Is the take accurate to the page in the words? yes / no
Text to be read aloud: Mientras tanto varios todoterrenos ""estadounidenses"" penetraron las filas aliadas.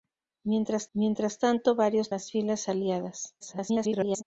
no